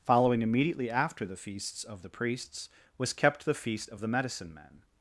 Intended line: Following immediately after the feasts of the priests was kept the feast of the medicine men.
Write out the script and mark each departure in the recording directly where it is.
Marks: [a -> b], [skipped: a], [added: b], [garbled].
Following immediately after the feasts of the priests was kept the feast of the medicine men.